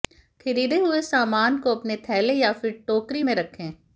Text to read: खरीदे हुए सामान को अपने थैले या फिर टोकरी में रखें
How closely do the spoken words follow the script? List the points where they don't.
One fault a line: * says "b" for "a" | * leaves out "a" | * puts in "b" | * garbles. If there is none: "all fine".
all fine